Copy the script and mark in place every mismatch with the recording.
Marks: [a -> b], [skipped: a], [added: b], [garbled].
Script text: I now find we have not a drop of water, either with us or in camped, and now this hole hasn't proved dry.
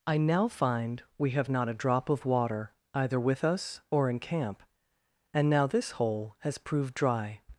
I now find we have not a drop of water, either with us or in [camped, -> camp] and now this hole [hasn't -> has] proved dry.